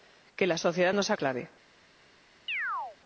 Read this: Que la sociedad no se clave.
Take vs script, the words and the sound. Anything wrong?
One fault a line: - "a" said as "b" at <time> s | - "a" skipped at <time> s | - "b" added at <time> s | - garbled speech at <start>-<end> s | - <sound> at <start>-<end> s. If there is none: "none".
- chirp at 2.5-3.0 s